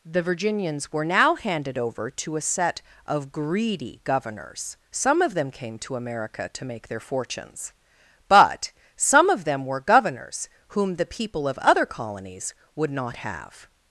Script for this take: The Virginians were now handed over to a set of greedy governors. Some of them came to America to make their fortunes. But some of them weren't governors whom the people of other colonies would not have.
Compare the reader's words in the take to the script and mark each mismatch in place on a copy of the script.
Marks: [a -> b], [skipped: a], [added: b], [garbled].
The Virginians were now handed over to a set of greedy governors. Some of them came to America to make their fortunes. But some of them [weren't -> were] governors whom the people of other colonies would not have.